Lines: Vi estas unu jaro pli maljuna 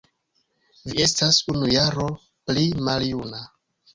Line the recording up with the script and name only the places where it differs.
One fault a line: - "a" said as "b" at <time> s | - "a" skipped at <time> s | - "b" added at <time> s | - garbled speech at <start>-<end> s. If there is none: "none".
none